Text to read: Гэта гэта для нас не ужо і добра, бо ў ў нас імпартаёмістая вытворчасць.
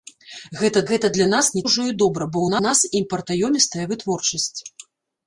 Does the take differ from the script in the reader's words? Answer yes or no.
no